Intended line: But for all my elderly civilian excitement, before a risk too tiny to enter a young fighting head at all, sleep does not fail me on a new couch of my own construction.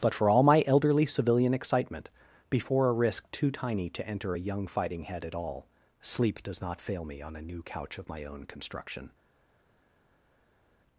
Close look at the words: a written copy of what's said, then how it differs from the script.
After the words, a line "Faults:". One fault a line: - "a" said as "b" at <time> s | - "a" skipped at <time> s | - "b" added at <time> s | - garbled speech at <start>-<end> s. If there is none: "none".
But for all my elderly civilian excitement, before a risk too tiny to enter a young fighting head at all, sleep does not fail me on a new couch of my own construction.
Faults:
none